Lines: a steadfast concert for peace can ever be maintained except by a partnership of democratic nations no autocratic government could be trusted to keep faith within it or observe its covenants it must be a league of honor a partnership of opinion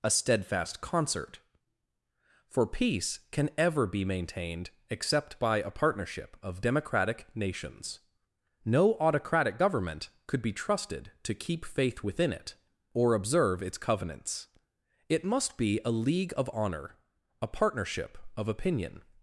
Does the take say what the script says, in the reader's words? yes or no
yes